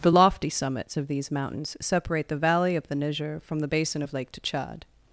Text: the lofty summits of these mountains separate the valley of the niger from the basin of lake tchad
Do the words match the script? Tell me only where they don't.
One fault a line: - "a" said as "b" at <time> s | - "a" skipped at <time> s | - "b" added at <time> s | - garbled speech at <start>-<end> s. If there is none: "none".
none